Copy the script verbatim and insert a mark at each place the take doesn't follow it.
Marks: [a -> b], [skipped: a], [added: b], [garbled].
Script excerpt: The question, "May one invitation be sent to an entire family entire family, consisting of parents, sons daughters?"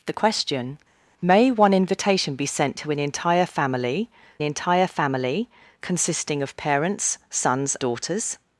The question, "May one invitation be sent to an entire family entire family, consisting of parents, sons daughters?"